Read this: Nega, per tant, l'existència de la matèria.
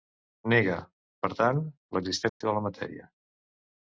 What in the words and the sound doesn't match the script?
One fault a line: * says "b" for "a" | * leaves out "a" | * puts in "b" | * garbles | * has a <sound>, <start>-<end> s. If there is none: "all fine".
* has a dropout, 2.3-2.4 s